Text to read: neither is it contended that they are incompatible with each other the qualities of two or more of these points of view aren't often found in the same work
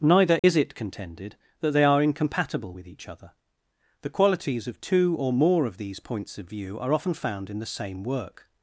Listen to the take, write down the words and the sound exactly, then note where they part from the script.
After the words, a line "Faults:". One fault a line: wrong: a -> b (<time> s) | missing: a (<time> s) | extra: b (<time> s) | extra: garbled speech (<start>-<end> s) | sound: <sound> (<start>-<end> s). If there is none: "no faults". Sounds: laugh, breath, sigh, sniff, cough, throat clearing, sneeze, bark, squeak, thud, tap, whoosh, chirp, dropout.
neither is it contended that they are incompatible with each other the qualities of two or more of these points of view are often found in the same work
Faults:
sound: dropout (0.4-0.4 s)
wrong: aren't -> are (6.8 s)